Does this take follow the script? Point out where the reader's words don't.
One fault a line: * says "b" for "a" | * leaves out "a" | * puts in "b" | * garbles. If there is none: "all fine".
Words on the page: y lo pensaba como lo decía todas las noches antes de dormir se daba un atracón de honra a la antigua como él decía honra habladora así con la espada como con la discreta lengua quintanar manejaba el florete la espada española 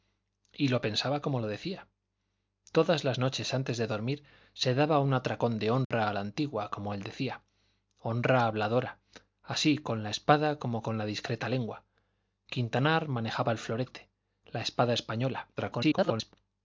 * garbles